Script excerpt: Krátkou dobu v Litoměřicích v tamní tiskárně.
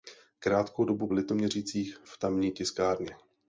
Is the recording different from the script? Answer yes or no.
no